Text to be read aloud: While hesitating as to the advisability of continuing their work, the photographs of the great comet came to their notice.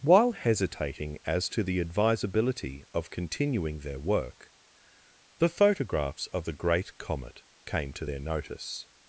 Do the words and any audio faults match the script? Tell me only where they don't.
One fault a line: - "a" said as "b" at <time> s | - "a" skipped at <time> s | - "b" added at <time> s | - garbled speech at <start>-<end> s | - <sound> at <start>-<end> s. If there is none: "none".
none